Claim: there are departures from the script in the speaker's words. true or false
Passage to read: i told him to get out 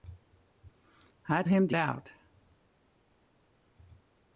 true